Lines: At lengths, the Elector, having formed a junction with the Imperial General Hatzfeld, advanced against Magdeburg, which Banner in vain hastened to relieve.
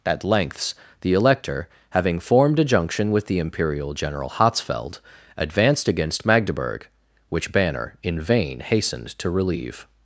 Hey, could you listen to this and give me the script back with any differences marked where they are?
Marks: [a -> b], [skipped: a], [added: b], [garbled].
At lengths, the Elector, having formed a junction with the Imperial General Hatzfeld, advanced against Magdeburg, which Banner in vain hastened to relieve.